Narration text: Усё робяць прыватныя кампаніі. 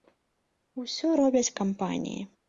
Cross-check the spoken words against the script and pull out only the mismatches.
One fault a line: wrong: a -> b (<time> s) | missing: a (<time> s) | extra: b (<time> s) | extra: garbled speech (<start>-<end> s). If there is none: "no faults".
missing: прыватныя (1.5 s)